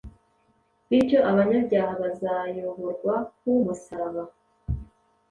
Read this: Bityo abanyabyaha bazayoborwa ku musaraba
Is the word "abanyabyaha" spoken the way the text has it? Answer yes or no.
yes